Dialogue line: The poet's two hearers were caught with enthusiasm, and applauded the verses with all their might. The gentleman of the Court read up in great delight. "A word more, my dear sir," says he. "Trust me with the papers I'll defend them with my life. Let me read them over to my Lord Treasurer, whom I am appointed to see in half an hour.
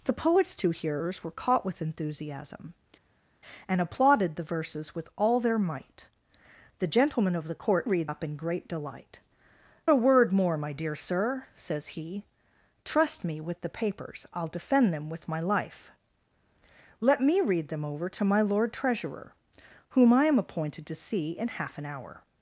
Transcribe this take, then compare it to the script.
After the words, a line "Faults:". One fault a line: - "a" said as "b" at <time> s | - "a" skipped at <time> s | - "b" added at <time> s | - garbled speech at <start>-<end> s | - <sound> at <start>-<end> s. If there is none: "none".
The poet's two hearers were caught with enthusiasm, and applauded the verses with all their might. The gentleman of the Court read up in great delight. "A word more, my dear sir," says he. "Trust me with the papers I'll defend them with my life. Let me read them over to my Lord Treasurer, whom I am appointed to see in half an hour.
Faults:
none